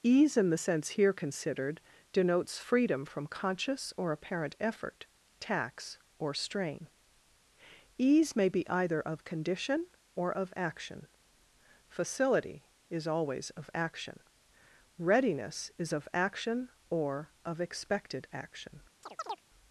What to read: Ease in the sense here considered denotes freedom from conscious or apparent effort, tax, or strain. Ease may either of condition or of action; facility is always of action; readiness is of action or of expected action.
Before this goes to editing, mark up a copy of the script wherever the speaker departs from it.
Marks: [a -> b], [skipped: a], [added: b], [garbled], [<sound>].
Ease in the sense here considered denotes freedom from conscious or apparent effort, tax, or strain. Ease may [added: be] either of condition or of action; facility is always of action; readiness is of action or of expected action. [chirp]